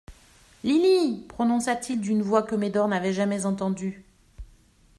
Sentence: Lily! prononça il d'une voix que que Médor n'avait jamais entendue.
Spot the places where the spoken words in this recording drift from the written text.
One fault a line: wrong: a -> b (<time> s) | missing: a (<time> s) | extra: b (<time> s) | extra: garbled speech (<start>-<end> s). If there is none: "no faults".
extra: t (1.8 s)
missing: que (2.5 s)